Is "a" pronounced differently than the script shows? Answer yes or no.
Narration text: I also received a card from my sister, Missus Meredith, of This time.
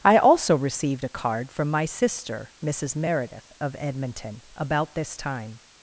no